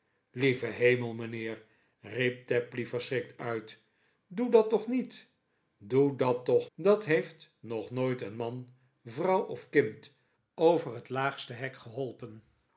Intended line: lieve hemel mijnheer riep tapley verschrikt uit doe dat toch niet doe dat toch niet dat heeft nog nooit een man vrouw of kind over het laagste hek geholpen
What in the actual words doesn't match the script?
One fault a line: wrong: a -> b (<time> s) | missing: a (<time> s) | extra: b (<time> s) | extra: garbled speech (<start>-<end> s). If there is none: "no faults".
missing: niet (6.7 s)